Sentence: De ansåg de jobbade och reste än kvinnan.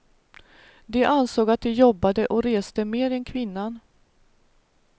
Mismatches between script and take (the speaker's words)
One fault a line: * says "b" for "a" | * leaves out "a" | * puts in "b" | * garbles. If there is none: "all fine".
* puts in "att"
* puts in "mer"